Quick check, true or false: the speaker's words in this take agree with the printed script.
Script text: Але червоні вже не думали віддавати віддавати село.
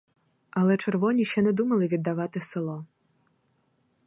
false